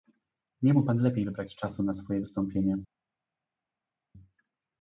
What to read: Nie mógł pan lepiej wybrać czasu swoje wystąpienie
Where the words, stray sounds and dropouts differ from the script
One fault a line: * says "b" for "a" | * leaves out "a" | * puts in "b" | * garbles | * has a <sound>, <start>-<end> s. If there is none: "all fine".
* puts in "na"